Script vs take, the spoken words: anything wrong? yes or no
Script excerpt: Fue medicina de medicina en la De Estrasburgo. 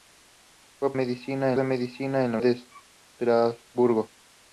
no